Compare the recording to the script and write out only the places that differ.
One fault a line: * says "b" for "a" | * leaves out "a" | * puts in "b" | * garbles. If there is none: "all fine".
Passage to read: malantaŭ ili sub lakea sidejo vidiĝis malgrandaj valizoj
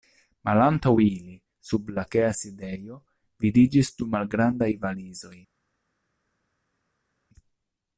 * puts in "du"